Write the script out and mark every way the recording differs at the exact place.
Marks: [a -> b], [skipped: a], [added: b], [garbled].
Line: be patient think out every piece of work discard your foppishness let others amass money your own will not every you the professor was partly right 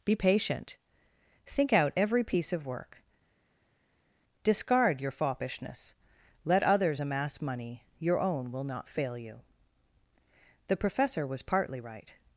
be patient think out every piece of work discard your foppishness let others amass money your own will not [every -> fail] you the professor was partly right